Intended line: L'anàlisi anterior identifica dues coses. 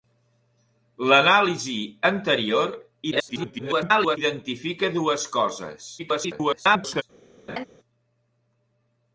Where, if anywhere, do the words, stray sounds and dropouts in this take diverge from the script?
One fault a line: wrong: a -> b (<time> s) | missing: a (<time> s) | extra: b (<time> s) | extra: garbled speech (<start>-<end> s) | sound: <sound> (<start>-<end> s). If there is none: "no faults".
extra: garbled speech (3.1-4.2 s)
extra: garbled speech (6.0-7.0 s)
sound: laugh (7.5-7.7 s)